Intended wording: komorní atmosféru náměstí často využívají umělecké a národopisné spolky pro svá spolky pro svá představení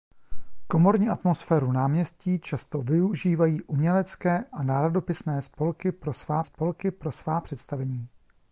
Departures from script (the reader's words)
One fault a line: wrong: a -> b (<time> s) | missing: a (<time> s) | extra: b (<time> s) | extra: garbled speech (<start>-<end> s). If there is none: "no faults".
no faults